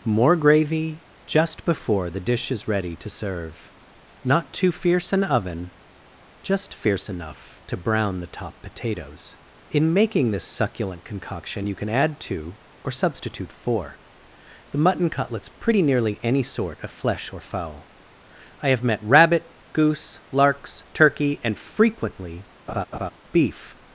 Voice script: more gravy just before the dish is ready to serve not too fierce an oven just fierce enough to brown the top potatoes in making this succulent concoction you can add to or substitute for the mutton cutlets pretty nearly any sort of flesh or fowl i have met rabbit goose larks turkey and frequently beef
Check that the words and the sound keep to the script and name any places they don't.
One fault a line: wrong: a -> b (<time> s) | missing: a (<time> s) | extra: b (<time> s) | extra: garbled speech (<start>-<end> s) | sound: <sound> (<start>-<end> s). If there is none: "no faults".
sound: laugh (22.7-23.1 s)